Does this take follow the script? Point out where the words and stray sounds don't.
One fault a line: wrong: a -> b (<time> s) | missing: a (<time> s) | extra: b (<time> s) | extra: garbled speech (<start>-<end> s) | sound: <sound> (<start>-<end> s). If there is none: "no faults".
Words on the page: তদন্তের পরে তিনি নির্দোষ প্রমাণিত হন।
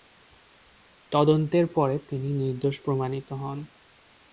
no faults